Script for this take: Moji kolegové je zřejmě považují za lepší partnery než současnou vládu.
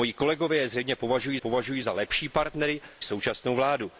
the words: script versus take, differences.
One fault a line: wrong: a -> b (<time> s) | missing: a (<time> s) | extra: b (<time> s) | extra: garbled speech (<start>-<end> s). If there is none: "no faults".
extra: považují (1.4 s)
missing: než (2.8 s)